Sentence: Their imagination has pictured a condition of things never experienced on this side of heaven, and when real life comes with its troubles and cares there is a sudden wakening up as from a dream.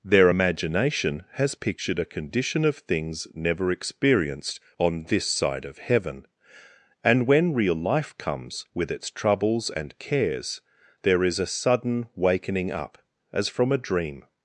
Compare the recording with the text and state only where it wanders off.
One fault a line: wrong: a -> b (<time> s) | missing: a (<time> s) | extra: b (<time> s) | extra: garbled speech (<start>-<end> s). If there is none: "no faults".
no faults